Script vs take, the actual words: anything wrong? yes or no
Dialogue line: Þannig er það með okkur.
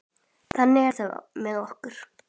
no